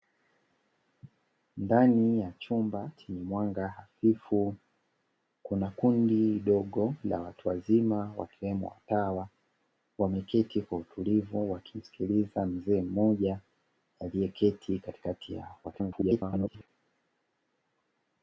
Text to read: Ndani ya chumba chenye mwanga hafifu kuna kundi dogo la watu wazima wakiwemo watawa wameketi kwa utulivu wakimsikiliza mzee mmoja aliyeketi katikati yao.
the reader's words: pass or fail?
fail